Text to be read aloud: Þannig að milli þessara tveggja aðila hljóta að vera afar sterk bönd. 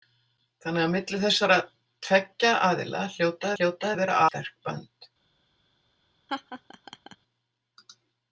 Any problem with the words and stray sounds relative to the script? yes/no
yes